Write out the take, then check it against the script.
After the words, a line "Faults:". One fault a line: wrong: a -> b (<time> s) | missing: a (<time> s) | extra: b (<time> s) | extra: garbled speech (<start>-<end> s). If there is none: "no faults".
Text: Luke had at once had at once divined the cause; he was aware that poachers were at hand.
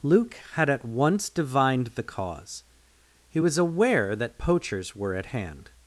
Luke had at once divined the cause; he was aware that poachers were at hand.
Faults:
missing: had at once (1.3 s)